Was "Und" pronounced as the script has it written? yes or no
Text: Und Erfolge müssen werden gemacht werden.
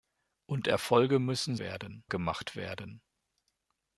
yes